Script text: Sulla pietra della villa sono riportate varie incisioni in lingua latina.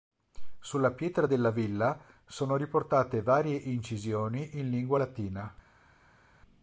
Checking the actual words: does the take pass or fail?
pass